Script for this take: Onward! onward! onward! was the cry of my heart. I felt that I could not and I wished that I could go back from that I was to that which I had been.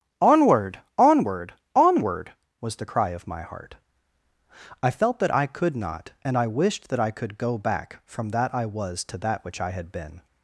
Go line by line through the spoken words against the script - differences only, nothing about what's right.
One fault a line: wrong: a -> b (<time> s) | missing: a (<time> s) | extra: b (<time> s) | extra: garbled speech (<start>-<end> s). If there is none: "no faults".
no faults